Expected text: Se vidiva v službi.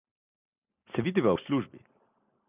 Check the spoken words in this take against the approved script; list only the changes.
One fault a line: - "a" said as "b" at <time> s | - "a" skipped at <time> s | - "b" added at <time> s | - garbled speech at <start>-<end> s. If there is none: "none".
none